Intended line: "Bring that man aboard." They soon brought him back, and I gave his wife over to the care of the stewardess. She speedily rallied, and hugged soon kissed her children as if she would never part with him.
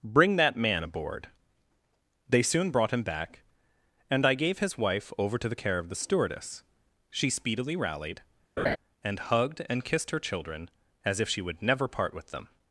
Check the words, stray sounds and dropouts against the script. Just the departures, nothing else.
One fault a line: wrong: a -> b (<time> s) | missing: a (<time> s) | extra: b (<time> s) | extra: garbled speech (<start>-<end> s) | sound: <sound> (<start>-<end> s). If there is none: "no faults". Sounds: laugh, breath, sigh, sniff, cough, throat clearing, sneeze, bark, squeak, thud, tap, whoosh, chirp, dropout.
sound: laugh (8.6-8.8 s)
wrong: soon -> and (9.7 s)
wrong: him -> them (12.3 s)